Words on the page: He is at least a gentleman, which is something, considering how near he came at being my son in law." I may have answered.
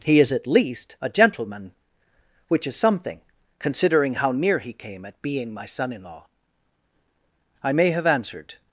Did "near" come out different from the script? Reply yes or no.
no